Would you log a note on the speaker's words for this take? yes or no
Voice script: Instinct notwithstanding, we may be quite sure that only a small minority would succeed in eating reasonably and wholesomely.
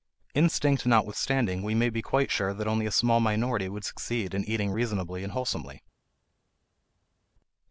no